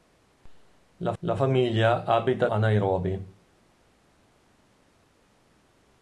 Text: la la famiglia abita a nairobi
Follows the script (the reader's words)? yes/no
yes